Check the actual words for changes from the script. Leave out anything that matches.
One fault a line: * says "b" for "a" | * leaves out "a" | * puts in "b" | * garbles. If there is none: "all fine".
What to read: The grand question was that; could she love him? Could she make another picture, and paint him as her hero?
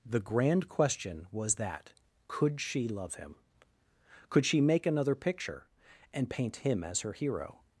all fine